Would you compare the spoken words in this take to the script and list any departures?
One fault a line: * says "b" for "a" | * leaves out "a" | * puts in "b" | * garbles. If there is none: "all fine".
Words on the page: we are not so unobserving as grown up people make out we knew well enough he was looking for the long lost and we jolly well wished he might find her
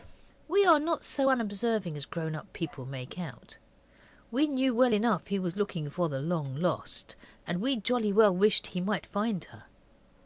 all fine